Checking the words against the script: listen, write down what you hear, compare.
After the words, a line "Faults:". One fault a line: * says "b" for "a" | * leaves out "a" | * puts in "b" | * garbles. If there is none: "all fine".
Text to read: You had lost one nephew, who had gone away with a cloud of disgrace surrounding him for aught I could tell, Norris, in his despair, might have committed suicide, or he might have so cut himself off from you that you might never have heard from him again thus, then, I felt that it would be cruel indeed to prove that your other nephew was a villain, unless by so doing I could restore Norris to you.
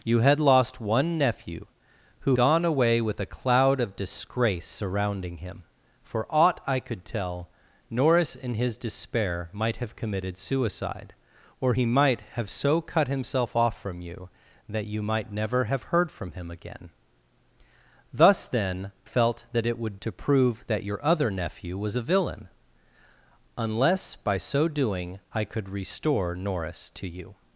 You had lost one nephew, who gone away with a cloud of disgrace surrounding him for aught I could tell, Norris, in his despair, might have committed suicide, or he might have so cut himself off from you that you might never have heard from him again thus, then, felt that it would to prove that your other nephew was a villain, unless by so doing I could restore Norris to you.
Faults:
* leaves out "had"
* leaves out "I"
* leaves out "be cruel indeed"